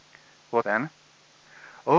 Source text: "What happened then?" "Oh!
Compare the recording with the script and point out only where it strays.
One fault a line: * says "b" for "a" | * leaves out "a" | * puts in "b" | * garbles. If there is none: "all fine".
* leaves out "happened"